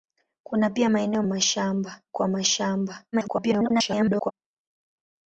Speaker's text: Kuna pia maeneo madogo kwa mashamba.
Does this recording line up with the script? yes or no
no